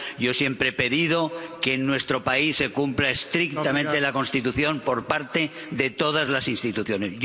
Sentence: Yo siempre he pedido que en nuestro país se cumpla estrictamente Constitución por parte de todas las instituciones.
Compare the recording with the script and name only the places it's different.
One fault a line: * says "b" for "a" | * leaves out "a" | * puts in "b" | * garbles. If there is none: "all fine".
* puts in "la"